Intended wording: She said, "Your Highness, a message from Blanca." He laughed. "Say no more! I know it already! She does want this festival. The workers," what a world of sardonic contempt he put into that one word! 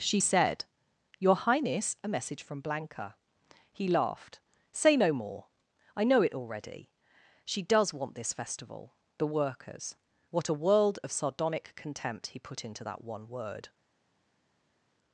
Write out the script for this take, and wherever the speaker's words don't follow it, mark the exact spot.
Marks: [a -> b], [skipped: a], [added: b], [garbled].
She said, "Your Highness, a message from Blanca." He laughed. "Say no more! I know it already! She does want this festival. The workers," what a world of sardonic contempt he put into that one word!